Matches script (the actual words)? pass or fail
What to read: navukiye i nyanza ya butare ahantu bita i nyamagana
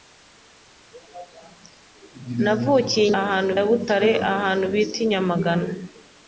fail